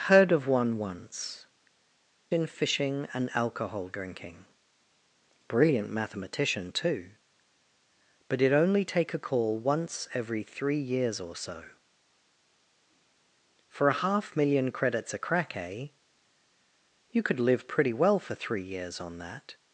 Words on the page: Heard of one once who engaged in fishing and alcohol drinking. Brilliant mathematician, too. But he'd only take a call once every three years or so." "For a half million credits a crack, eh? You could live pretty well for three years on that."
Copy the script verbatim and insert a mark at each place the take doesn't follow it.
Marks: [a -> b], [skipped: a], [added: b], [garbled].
Heard of one once [skipped: who engaged] in fishing and alcohol drinking. Brilliant mathematician, too. But he'd only take a call once every three years or so." "For a half million credits a crack, eh? You could live pretty well for three years on that."